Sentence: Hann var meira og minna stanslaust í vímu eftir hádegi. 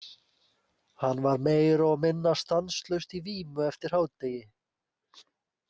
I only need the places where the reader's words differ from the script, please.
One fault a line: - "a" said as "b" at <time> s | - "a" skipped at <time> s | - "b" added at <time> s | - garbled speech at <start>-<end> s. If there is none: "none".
none